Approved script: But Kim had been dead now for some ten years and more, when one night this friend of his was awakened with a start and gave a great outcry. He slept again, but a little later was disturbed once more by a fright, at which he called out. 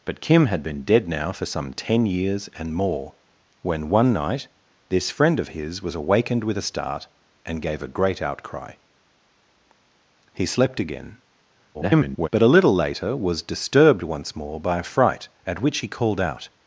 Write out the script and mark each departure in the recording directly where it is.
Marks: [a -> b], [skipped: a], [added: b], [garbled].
But Kim had been dead now for some ten years and more, when one night this friend of his was awakened with a start and gave a great outcry. He slept again, [garbled] but a little later was disturbed once more by a fright, at which he called out.